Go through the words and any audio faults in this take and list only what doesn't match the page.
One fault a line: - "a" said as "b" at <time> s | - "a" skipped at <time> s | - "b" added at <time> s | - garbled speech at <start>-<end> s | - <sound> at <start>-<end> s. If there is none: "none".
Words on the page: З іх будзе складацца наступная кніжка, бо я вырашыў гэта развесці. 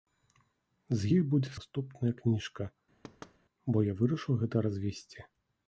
- "складацца" skipped at 1.5 s
- thud at 3.0-3.4 s